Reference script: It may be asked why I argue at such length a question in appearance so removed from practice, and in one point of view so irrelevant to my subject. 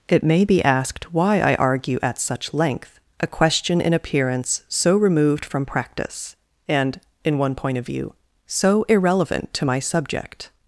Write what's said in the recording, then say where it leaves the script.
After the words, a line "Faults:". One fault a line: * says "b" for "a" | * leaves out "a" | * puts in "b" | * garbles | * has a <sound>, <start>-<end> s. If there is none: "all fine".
It may be asked why I argue at such length a question in appearance so removed from practice, and in one point of view so irrelevant to my subject.
Faults:
all fine